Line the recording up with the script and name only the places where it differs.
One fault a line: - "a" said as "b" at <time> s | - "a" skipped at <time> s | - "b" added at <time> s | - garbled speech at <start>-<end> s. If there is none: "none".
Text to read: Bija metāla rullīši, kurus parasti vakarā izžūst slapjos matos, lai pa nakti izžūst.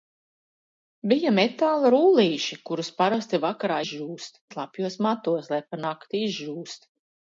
none